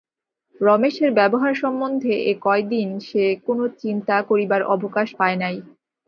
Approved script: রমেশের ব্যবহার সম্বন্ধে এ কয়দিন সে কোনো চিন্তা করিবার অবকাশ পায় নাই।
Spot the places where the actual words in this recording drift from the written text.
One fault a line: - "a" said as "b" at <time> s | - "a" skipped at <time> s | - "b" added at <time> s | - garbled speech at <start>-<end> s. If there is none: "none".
none